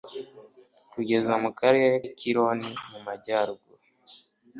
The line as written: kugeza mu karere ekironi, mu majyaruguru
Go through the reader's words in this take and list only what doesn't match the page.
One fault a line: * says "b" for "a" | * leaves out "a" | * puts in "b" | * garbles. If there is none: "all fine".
all fine